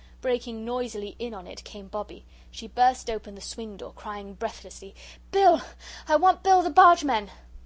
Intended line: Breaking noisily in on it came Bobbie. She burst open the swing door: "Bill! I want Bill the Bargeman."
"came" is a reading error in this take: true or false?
false